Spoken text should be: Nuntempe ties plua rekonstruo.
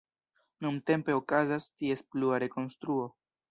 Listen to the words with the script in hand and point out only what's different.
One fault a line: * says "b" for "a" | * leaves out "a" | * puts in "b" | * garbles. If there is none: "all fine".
* puts in "okazas"